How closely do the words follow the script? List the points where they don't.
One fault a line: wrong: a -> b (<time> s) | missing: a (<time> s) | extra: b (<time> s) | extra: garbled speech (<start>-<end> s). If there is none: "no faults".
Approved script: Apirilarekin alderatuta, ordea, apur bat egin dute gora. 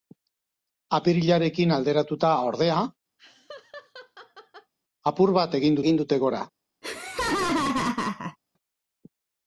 extra: egin (5.8 s)